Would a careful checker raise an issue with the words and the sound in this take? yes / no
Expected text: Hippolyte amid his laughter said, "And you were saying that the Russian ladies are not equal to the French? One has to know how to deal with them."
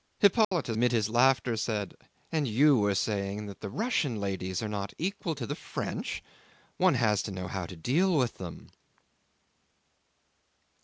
yes